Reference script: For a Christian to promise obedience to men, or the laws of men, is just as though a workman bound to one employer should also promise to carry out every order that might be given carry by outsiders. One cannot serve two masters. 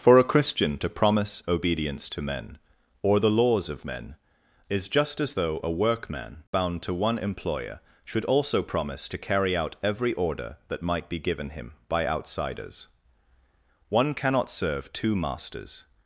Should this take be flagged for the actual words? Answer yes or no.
yes